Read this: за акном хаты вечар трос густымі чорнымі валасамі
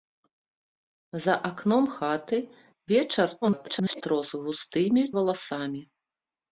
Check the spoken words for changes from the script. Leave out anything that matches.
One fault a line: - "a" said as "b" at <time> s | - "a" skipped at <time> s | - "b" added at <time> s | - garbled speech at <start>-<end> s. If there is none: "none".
- garbled speech at 3.4-4.0 s
- "чорнымі" skipped at 5.0 s